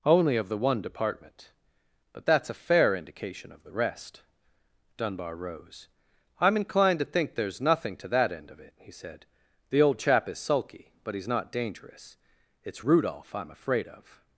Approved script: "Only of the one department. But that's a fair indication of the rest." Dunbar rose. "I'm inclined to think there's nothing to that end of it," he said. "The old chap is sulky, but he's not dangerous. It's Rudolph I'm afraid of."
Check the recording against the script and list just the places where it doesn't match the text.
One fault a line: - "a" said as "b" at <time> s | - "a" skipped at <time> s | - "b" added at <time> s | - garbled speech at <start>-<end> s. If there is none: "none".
none